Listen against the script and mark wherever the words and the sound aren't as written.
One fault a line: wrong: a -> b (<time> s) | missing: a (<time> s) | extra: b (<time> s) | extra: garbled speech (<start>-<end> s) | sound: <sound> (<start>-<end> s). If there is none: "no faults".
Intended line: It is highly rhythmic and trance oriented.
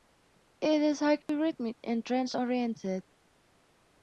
sound: dropout (1.2-1.3 s)